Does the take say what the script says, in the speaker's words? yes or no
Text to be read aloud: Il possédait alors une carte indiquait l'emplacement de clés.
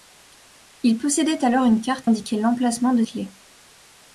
yes